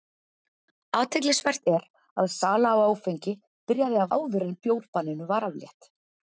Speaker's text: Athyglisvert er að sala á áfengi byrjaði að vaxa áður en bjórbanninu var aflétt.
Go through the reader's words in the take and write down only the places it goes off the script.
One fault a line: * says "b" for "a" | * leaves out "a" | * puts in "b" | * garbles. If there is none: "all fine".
* leaves out "vaxa"